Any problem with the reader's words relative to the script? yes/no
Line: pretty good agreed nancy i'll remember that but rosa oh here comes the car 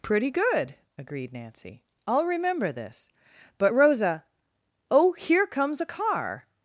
yes